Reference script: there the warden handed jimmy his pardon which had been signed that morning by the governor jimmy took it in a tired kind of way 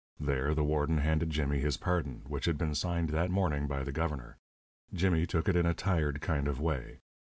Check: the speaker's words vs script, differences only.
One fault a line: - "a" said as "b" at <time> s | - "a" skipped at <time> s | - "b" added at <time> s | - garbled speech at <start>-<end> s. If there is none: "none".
none